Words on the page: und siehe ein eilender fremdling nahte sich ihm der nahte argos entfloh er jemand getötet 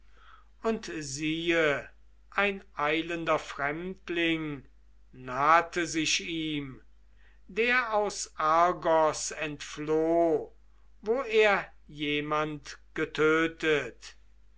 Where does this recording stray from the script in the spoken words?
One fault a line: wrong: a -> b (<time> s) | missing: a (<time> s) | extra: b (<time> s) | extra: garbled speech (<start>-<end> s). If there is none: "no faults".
wrong: nahte -> aus (7.9 s)
extra: wo (11.0 s)